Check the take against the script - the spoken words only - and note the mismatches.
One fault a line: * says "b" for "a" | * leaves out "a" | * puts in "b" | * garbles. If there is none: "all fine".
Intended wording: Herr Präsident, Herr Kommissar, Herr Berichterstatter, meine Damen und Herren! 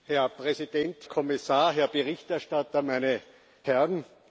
* leaves out "Herr"
* leaves out "Damen und"